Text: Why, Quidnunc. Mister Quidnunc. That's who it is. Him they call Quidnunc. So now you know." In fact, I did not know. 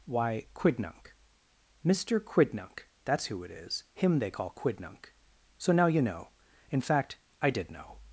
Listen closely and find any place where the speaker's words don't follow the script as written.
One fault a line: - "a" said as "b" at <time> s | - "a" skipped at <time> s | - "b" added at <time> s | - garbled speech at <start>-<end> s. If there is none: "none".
- "not" skipped at 7.7 s